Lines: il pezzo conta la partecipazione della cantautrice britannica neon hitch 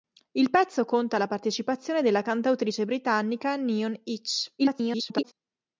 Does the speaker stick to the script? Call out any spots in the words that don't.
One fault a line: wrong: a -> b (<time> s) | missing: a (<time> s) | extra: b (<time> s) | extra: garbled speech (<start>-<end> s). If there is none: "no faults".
extra: garbled speech (4.6-5.3 s)